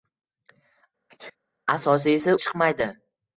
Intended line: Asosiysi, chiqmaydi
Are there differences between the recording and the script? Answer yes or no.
no